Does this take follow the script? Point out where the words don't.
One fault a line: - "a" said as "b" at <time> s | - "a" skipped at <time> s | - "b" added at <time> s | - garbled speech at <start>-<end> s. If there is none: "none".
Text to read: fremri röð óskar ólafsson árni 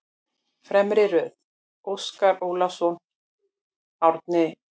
none